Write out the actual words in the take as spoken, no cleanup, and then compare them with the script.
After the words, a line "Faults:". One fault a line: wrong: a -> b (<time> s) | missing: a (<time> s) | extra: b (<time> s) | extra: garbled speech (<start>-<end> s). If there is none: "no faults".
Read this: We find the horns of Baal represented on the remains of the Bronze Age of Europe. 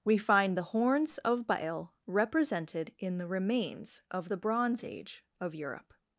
We find the horns of Baal represented in the remains of the Bronze Age of Europe.
Faults:
wrong: on -> in (3.0 s)